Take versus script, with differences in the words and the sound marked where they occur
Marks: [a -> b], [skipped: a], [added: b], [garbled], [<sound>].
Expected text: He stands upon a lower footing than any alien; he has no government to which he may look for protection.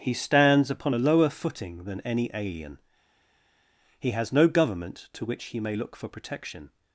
He stands upon a lower footing than any alien; he has no government to which he may look for protection.